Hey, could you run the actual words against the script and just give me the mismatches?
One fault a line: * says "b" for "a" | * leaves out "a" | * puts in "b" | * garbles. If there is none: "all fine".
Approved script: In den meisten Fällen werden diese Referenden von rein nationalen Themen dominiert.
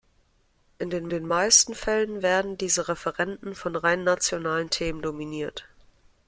* puts in "den"